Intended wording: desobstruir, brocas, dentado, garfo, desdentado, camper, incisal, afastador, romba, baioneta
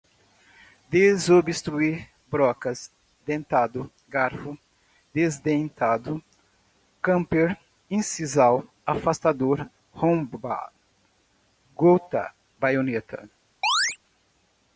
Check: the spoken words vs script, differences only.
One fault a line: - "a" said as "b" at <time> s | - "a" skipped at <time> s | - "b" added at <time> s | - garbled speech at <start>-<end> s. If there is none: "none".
- "gota" added at 11.8 s